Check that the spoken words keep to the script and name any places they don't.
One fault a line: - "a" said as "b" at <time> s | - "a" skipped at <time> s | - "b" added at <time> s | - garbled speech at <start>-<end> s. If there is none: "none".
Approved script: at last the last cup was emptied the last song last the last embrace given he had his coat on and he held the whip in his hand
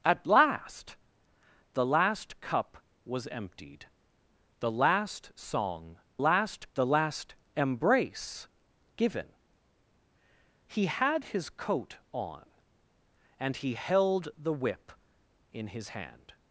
none